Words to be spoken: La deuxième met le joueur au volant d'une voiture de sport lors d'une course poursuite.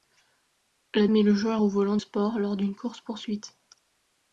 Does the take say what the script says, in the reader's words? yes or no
no